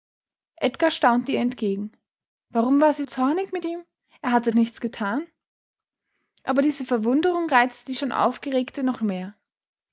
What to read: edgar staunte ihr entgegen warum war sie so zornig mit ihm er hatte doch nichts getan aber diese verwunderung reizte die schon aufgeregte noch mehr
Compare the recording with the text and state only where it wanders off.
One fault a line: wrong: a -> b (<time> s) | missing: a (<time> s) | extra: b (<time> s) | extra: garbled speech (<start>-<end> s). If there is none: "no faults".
missing: so (3.0 s)
missing: doch (4.5 s)